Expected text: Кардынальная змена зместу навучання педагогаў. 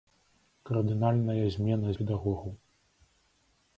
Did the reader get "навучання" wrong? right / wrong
wrong